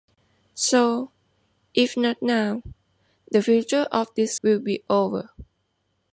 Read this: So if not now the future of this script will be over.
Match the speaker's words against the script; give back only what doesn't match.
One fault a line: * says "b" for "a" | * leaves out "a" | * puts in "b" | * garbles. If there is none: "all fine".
* leaves out "script"